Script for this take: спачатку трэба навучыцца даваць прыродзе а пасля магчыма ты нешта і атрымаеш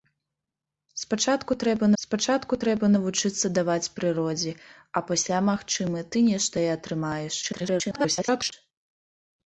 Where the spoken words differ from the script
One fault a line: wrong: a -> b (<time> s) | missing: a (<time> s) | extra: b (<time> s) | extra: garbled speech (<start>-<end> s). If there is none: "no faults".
extra: спачатку трэба (2.0 s)
extra: garbled speech (7.4-8.5 s)